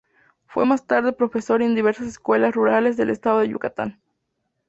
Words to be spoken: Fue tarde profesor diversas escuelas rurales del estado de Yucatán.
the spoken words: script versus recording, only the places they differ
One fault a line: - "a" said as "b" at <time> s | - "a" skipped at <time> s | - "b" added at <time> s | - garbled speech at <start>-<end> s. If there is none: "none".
- "más" added at 0.6 s
- "en" added at 1.6 s